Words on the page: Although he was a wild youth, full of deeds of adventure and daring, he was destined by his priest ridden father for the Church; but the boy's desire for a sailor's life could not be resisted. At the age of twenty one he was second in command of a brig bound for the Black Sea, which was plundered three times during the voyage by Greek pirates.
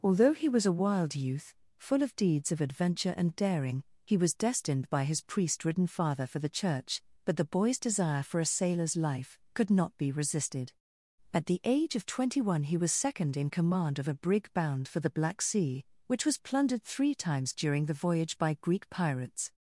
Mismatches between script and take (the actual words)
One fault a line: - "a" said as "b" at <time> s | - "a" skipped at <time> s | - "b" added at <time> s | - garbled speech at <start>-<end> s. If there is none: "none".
none